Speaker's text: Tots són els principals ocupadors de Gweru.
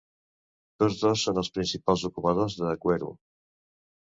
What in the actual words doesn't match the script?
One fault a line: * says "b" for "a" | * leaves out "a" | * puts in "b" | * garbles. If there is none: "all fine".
* puts in "dos"